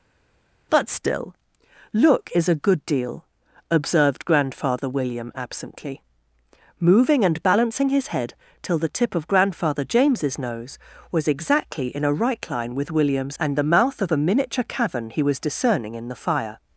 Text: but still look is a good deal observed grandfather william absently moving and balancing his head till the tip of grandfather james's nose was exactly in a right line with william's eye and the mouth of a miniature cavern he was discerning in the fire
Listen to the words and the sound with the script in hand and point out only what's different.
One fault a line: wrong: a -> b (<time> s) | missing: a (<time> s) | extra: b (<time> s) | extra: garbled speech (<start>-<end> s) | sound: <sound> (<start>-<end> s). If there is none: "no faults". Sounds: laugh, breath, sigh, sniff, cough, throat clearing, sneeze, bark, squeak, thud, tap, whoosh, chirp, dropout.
missing: eye (13.4 s)